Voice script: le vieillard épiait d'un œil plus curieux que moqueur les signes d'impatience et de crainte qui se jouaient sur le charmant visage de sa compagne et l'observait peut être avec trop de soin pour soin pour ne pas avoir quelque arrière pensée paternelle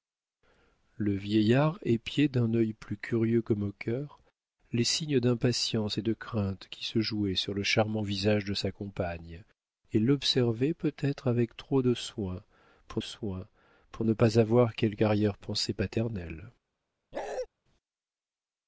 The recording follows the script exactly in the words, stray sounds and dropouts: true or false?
false